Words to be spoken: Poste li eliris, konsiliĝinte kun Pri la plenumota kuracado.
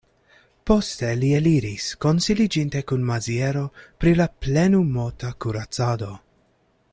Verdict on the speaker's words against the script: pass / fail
fail